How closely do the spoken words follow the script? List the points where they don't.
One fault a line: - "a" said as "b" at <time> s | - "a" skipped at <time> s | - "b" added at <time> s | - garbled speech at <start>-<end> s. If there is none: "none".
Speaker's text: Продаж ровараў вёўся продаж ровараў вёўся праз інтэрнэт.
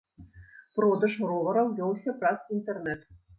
- "продаж ровараў вёўся" skipped at 2.2 s